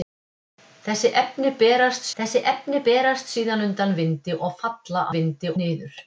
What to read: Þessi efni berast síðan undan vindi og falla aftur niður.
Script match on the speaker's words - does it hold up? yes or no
no